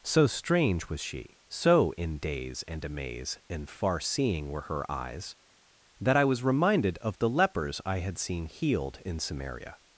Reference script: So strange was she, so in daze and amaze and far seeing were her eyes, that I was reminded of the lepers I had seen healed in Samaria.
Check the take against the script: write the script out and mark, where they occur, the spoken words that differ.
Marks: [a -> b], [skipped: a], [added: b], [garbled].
So strange was she, so in daze and amaze and far seeing were her eyes, that I was reminded of the lepers I had seen healed in Samaria.